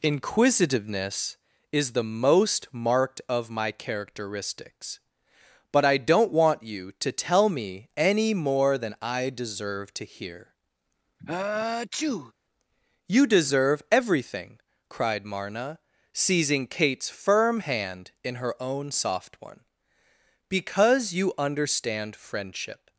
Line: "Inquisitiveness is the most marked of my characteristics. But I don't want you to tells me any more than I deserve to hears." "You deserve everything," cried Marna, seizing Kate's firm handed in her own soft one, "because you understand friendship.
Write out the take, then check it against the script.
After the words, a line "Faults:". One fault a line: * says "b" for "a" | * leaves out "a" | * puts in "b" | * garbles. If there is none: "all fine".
"Inquisitiveness is the most marked of my characteristics. But I don't want you to tell me any more than I deserve to hear." "You deserve everything," cried Marna, seizing Kate's firm hand in her own soft one, "because you understand friendship.
Faults:
* says "tell" for "tells"
* says "hear" for "hears"
* says "hand" for "handed"